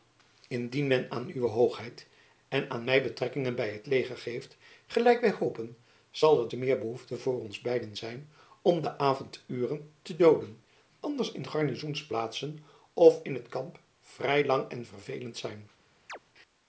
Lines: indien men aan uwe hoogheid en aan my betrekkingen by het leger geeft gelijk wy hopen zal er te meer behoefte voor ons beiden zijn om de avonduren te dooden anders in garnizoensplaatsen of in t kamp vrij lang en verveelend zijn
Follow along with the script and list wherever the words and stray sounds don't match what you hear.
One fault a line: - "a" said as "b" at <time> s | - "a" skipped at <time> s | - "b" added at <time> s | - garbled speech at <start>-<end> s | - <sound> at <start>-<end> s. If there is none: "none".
- chirp at 16.1-16.2 s